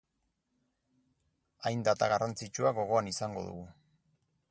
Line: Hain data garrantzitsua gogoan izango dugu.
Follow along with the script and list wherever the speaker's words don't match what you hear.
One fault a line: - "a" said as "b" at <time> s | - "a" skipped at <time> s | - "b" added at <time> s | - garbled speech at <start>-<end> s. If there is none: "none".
none